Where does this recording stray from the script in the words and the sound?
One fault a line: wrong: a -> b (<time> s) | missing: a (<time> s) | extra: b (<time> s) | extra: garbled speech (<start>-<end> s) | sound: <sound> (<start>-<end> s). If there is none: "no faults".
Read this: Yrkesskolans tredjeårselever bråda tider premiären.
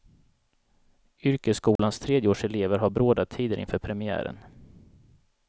sound: dropout (1.8-1.8 s)
extra: har (2.8 s)
extra: inför (3.6 s)